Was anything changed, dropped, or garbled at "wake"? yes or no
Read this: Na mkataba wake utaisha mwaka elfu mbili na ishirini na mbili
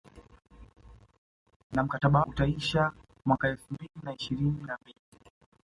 yes